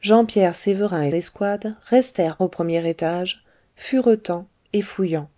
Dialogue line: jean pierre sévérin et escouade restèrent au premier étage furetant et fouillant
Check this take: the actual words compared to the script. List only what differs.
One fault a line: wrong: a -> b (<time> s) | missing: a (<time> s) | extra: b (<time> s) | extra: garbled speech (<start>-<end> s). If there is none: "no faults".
no faults